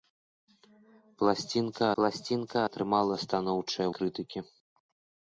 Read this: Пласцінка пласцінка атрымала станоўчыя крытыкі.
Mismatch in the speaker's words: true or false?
false